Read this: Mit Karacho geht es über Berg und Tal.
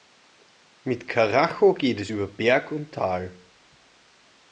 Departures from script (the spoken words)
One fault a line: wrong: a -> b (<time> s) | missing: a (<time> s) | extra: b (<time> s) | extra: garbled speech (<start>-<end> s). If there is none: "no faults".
no faults